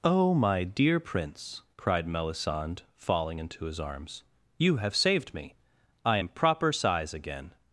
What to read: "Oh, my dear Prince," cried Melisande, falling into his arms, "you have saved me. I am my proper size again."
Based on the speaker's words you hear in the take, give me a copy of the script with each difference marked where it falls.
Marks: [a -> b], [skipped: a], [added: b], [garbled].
"Oh, my dear Prince," cried Melisande, falling into his arms, "you have saved me. I am [skipped: my] proper size again."